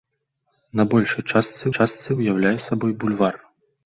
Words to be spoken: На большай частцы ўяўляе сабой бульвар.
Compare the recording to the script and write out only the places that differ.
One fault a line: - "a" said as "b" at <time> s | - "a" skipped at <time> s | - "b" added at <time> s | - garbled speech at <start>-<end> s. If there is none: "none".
- "частцы" added at 1.8 s